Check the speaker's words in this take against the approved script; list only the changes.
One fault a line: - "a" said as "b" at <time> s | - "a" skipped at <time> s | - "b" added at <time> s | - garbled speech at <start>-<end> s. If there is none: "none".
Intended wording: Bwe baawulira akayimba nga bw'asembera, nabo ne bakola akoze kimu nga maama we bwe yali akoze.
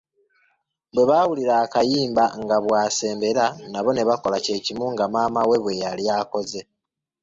- "akoze" said as "kye" at 4.5 s